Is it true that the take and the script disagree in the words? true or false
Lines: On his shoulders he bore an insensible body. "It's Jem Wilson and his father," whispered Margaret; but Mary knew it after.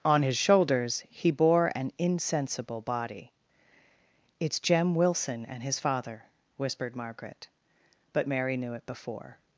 true